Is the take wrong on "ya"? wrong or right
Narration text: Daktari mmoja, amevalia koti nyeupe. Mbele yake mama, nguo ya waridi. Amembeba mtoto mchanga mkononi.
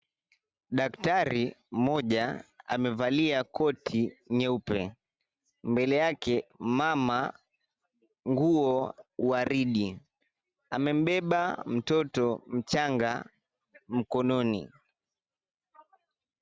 wrong